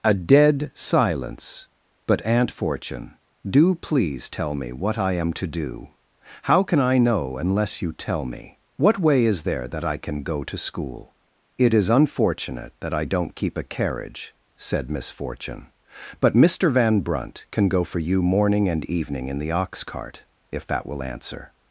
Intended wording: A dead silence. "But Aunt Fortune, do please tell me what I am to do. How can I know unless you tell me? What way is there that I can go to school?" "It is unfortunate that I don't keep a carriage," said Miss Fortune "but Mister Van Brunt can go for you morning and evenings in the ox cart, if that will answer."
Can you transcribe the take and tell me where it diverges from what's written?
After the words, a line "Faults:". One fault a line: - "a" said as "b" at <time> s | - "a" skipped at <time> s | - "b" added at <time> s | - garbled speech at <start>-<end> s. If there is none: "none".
A dead silence. "But Aunt Fortune, do please tell me what I am to do. How can I know unless you tell me? What way is there that I can go to school?" "It is unfortunate that I don't keep a carriage," said Miss Fortune "but Mister Van Brunt can go for you morning and evening in the ox cart, if that will answer."
Faults:
- "evenings" said as "evening" at 18.9 s